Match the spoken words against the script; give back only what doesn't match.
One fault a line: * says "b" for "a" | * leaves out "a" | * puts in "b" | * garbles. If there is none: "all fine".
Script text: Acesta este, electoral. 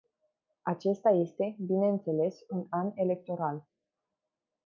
* puts in "bineînțeles un an"